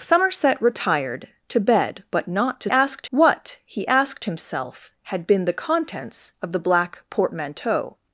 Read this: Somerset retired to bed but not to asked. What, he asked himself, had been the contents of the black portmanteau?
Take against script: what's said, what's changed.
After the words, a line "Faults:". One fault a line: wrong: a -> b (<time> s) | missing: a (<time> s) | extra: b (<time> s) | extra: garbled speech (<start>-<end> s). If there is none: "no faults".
Somerset retired to bed but not to asked. What, he asked himself, had been the contents of the black portmanteau?
Faults:
no faults